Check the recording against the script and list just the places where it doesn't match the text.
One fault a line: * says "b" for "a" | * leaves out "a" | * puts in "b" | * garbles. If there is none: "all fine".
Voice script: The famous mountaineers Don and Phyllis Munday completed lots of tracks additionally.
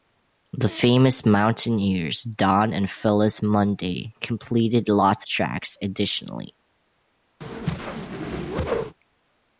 * leaves out "of"